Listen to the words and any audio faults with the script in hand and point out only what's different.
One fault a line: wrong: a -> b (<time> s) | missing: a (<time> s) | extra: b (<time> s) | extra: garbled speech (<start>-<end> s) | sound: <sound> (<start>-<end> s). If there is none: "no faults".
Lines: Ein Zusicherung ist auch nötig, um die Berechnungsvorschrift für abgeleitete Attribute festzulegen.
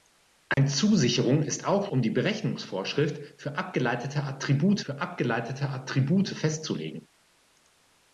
sound: dropout (0.5-0.6 s)
missing: nötig (1.9 s)
extra: für abgeleitete Attribute (4.8 s)